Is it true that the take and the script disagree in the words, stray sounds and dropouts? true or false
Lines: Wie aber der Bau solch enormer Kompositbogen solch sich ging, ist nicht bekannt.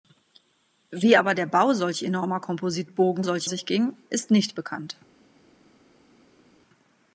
false